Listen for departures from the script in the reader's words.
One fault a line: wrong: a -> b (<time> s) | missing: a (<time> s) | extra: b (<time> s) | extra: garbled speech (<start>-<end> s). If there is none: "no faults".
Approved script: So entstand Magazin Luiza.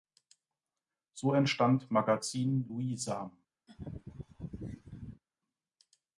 no faults